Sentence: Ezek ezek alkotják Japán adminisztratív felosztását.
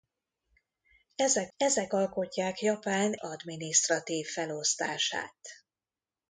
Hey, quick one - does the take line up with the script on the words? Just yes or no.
yes